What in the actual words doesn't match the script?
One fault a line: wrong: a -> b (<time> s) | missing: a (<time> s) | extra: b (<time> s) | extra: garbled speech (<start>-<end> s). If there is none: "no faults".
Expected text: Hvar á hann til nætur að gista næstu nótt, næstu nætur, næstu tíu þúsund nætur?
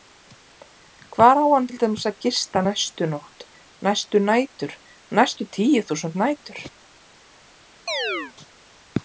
wrong: nætur -> dæmis (1.8 s)